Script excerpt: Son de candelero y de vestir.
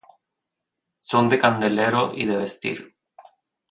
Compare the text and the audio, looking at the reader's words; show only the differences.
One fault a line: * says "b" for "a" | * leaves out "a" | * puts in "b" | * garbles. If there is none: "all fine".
all fine